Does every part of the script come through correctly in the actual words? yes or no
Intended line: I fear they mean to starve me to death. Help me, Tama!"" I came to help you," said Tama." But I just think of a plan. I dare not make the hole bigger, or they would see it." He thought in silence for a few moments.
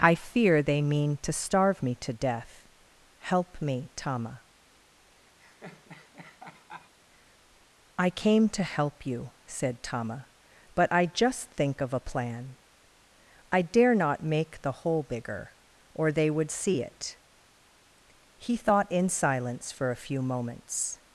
yes